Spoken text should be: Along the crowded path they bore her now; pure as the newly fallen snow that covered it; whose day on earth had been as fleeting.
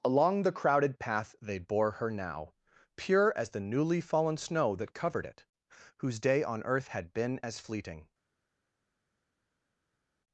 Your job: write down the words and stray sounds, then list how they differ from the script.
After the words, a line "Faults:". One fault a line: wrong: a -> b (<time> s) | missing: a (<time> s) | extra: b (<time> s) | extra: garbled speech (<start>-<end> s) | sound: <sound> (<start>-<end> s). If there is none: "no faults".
Along the crowded path they bore her now; pure as the newly fallen snow that covered it; whose day on earth had been as fleeting.
Faults:
no faults